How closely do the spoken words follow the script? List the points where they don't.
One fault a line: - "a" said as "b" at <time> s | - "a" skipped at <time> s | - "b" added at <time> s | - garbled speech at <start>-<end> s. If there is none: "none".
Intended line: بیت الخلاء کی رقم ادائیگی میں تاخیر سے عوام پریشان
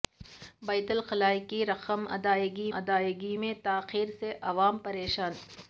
- "ادائیگی" added at 2.7 s